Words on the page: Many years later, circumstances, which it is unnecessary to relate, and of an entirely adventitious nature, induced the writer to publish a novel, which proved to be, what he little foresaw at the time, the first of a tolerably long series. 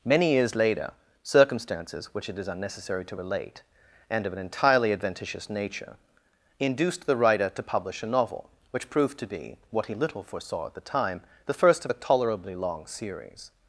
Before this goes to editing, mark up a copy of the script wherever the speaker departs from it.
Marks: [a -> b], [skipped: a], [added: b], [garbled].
Many years later, circumstances, which it is unnecessary to relate, and of an entirely adventitious nature, induced the writer to publish a novel, which proved to be, what he little foresaw at the time, the first of a tolerably long series.